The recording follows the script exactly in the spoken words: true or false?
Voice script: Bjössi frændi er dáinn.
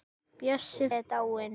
false